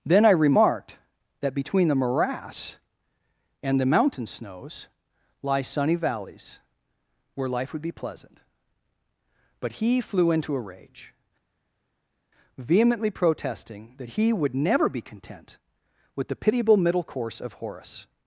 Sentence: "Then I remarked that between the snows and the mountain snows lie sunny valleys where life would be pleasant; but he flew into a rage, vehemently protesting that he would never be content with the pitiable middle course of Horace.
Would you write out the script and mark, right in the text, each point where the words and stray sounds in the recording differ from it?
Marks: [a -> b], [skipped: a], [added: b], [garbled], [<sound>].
"Then I remarked that between the [snows -> morass] and the mountain snows lie sunny valleys where life would be pleasant; but he flew into a rage, vehemently protesting that he would never be content with the pitiable middle course of Horace.